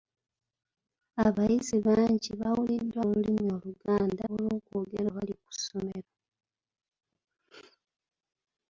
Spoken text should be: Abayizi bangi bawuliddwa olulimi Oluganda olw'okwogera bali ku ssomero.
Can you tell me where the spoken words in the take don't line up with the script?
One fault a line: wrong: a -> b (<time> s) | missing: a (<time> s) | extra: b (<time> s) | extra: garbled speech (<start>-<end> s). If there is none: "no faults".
no faults